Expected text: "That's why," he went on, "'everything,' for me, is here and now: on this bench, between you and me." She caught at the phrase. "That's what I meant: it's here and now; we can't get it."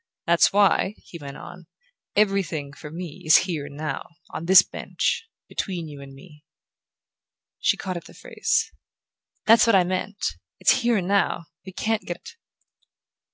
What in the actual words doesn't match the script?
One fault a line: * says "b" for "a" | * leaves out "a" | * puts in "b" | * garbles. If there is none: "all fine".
all fine